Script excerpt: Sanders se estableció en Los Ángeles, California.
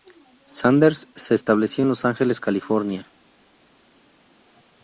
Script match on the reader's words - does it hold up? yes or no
yes